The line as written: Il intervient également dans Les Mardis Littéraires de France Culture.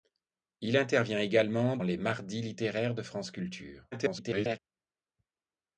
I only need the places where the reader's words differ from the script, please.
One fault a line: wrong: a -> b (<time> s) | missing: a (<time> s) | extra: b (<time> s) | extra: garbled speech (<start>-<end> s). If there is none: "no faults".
missing: dans (1.8 s)
extra: garbled speech (3.9-4.6 s)